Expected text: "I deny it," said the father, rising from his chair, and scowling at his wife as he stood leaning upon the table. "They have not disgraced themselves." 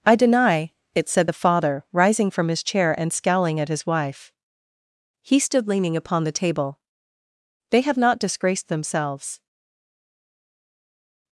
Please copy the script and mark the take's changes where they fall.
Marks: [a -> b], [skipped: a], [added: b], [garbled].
"I deny it," said the father, rising from his chair, and scowling at his wife [skipped: as] he stood leaning upon the table. "They have not disgraced themselves."